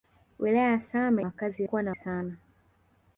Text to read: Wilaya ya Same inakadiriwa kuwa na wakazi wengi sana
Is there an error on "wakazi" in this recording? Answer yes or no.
yes